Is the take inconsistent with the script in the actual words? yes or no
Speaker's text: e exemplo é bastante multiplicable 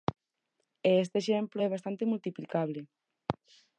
yes